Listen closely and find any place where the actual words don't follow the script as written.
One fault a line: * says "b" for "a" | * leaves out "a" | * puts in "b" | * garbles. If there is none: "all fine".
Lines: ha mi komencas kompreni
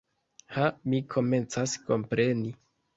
all fine